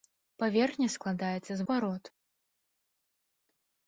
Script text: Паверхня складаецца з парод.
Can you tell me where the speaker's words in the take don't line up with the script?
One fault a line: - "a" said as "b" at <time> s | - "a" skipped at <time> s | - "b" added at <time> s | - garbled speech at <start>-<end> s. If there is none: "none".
none